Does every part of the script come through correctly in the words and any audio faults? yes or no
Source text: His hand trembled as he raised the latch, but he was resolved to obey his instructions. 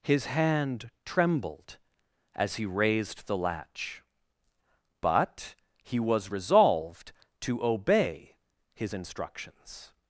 yes